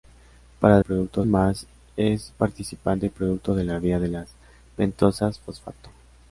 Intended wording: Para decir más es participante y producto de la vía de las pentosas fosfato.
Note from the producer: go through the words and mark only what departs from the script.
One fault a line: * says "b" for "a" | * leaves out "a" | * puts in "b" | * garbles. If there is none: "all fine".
* says "producto" for "decir"